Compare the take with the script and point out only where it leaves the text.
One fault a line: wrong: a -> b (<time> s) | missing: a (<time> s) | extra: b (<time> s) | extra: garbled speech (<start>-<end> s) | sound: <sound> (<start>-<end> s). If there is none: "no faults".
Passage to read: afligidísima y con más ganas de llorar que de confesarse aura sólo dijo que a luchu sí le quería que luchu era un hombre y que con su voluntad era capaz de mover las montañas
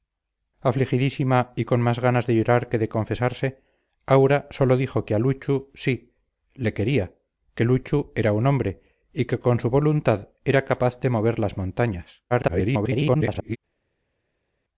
extra: garbled speech (12.3-13.6 s)